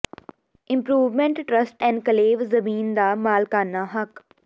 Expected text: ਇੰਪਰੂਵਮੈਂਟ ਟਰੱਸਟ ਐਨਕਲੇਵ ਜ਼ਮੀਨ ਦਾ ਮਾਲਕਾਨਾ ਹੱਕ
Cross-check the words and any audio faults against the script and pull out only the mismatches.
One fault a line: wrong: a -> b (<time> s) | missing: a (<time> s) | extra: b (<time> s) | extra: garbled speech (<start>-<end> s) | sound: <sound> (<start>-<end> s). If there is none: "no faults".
no faults